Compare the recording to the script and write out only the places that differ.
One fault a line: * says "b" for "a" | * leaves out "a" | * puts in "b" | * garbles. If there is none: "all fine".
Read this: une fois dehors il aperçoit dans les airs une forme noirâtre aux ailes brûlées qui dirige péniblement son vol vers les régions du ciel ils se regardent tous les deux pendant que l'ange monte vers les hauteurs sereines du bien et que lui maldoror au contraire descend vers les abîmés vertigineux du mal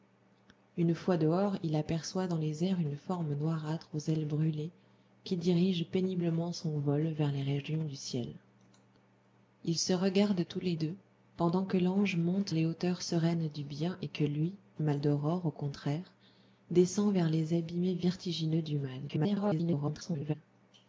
* leaves out "vers"
* garbles